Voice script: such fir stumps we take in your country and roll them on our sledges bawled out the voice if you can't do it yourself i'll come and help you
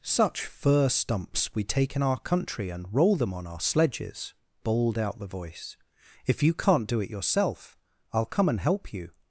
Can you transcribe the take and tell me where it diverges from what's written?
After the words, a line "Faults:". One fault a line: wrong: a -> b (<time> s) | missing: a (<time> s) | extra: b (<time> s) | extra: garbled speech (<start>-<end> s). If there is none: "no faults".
such fir stumps we take in our country and roll them on our sledges bawled out the voice if you can't do it yourself i'll come and help you
Faults:
wrong: your -> our (2.0 s)